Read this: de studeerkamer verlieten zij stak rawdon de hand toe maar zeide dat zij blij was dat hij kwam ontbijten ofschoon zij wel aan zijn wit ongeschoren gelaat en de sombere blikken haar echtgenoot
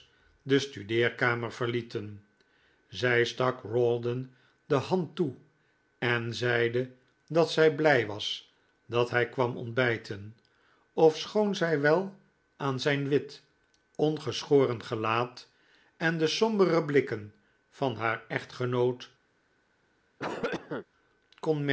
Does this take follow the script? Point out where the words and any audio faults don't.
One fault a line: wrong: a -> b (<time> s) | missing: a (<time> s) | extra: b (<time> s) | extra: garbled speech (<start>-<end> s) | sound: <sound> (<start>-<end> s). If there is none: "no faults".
wrong: maar -> en (6.0 s)
extra: van (17.7 s)
sound: cough (20.2-20.9 s)